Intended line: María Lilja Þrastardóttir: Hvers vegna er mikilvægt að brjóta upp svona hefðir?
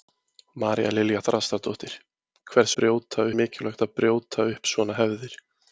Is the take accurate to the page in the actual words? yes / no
no